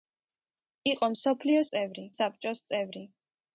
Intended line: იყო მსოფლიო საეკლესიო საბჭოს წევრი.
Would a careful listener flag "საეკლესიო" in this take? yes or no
yes